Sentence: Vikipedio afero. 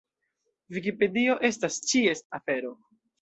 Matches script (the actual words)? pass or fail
fail